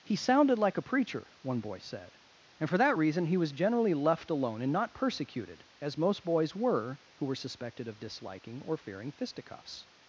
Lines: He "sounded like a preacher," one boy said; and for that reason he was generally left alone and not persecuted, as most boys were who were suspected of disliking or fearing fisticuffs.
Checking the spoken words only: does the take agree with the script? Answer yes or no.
yes